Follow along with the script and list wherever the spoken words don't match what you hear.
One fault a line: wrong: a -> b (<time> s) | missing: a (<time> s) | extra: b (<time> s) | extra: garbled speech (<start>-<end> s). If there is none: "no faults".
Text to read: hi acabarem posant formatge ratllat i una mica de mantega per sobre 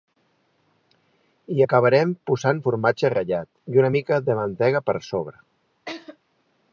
no faults